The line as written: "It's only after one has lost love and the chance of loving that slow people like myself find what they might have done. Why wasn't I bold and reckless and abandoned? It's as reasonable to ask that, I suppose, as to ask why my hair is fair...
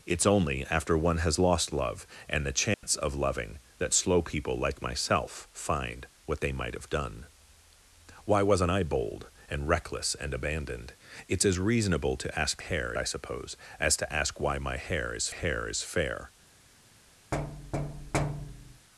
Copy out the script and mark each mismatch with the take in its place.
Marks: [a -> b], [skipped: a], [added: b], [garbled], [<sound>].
"It's only after one has lost love and the chance [dropout] of loving that slow people like myself find what they might have done. Why wasn't I bold and reckless and abandoned? It's as reasonable to ask [that, -> hair] I suppose, as to ask why my hair is [added: hair is] fair... [thud]